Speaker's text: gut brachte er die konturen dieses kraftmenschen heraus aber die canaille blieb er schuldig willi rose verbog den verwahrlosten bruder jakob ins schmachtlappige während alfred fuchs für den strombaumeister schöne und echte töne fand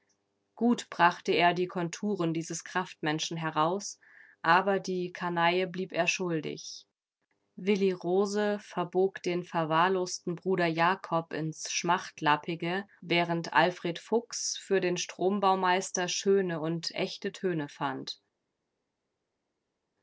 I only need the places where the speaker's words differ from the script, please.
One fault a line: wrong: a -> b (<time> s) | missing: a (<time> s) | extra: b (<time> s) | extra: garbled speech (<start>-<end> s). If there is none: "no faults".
no faults